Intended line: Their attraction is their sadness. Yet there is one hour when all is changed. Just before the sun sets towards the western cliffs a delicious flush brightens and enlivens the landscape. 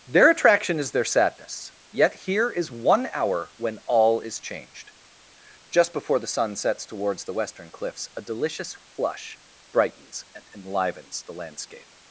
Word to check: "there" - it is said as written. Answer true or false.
false